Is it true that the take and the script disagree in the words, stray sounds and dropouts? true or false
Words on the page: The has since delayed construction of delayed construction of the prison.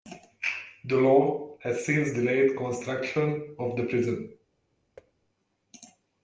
true